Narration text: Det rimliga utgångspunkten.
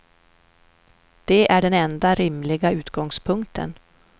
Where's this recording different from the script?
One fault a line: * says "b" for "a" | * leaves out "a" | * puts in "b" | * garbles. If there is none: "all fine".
* puts in "är den enda"